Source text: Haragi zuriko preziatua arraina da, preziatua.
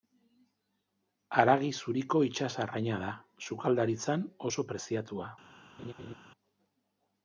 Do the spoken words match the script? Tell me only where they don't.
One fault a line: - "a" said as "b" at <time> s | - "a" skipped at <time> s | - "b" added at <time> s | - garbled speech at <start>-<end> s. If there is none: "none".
- "preziatua" said as "itsas" at 2.3 s
- "sukaldaritzan oso" added at 3.5 s